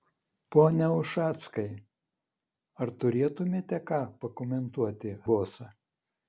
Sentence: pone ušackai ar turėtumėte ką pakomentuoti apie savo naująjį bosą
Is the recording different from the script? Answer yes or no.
yes